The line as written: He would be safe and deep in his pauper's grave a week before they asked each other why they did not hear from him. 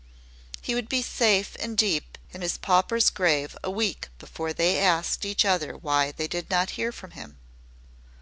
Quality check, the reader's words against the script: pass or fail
pass